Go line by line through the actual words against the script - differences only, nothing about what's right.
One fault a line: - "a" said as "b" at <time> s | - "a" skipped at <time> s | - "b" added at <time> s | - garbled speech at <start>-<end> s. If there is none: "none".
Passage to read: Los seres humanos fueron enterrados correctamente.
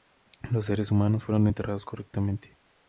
none